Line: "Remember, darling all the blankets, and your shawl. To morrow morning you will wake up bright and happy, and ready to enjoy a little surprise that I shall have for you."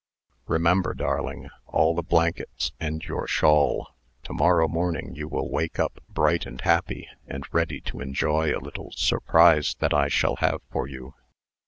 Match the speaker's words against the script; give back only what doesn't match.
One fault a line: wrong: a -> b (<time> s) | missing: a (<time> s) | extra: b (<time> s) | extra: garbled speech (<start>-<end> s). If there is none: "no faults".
no faults